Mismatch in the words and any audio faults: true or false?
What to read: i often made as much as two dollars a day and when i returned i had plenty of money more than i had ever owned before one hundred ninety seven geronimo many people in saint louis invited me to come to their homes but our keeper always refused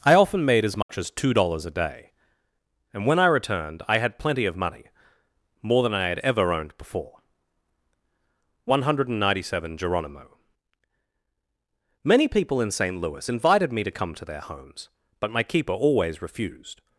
true